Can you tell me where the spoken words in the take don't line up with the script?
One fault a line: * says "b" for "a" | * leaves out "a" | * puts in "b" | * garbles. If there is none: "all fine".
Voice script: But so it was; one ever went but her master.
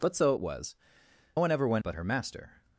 all fine